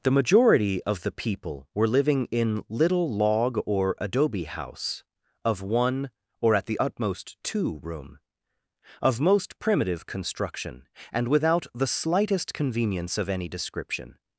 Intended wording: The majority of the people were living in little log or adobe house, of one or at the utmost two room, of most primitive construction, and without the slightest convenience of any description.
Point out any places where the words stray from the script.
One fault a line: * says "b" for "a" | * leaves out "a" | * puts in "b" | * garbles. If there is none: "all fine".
all fine